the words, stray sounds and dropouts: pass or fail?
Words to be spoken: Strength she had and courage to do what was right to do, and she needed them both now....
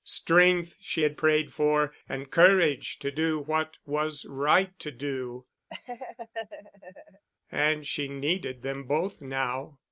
fail